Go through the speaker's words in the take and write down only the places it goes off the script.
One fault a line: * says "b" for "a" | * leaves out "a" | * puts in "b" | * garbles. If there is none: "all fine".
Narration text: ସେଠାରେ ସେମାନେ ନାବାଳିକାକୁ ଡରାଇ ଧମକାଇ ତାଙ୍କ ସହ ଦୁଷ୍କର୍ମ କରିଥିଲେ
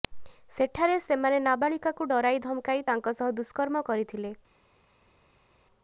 all fine